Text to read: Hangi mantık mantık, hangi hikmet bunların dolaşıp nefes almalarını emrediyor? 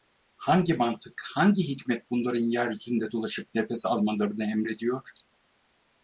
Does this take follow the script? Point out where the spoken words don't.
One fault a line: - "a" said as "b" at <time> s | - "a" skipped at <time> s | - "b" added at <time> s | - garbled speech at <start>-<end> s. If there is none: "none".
- "mantık" skipped at 1.2 s
- "yeryüzünde" added at 2.5 s